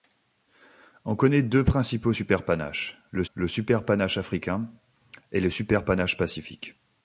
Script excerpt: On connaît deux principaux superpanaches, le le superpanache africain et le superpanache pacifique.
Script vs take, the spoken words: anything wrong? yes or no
no